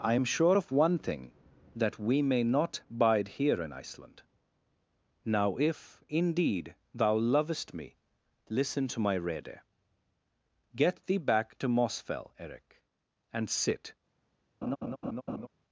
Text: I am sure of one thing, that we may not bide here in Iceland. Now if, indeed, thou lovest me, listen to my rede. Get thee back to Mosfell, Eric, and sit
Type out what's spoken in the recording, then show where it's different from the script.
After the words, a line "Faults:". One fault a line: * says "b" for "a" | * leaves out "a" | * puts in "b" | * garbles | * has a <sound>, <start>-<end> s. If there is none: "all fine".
I am sure of one thing, that we may not bide here in Iceland. Now if, indeed, thou lovest me, listen to my rede. Get thee back to Mosfell, Eric, and sit
Faults:
* has a laugh, 14.6-15.5 s